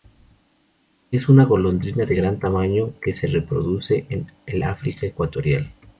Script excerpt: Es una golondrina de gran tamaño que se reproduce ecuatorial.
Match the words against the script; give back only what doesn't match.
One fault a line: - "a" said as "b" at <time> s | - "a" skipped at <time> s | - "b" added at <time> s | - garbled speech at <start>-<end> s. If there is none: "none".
- "en el África" added at 4.1 s